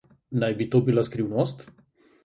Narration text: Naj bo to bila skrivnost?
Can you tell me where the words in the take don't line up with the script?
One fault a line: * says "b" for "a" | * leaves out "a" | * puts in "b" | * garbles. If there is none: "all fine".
* says "bi" for "bo"